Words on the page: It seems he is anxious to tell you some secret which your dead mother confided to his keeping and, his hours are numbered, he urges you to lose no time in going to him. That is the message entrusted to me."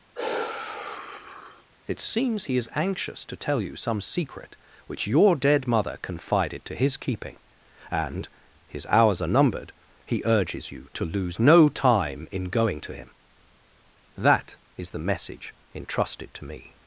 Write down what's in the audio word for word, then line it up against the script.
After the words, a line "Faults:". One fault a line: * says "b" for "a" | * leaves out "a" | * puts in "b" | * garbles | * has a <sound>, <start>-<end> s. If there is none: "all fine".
It seems he is anxious to tell you some secret which your dead mother confided to his keeping and, his hours are numbered, he urges you to lose no time in going to him. That is the message entrusted to me."
Faults:
* has a sigh, 0.1-1.7 s